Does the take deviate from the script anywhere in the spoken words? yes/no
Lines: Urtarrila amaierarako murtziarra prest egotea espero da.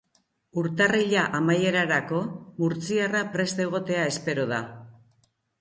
no